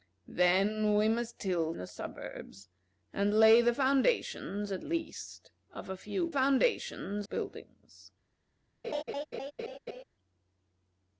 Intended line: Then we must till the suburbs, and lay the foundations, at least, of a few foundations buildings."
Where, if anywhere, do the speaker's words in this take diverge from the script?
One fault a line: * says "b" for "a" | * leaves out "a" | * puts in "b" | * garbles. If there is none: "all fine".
all fine